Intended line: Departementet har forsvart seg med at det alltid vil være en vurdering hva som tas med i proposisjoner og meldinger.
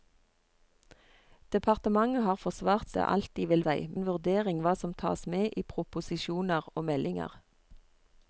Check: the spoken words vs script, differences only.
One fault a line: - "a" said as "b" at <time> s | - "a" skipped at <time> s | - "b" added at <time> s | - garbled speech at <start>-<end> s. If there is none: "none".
- "seg med at" skipped at 2.9 s
- "være" said as "seg" at 3.6 s